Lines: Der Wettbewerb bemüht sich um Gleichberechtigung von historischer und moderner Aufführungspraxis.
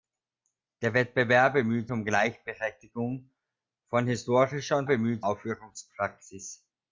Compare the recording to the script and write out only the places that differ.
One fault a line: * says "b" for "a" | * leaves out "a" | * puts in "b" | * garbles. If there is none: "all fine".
* leaves out "sich"
* says "bemüht" for "moderner"